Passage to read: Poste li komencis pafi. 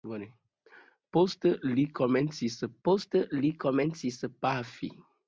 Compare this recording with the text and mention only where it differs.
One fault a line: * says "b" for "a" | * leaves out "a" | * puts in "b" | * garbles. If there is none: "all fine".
* puts in "poste li komencis"